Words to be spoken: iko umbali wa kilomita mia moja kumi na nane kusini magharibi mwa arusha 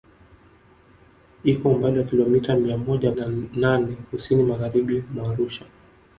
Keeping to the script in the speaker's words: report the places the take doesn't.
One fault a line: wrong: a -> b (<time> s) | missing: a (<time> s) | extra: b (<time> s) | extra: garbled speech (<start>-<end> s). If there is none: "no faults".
missing: kumi (3.1 s)